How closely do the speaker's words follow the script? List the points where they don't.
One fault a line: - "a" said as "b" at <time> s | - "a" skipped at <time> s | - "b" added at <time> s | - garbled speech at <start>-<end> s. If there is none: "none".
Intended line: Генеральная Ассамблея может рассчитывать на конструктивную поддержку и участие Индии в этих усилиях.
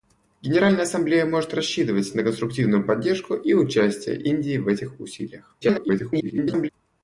- garbled speech at 5.6-6.7 s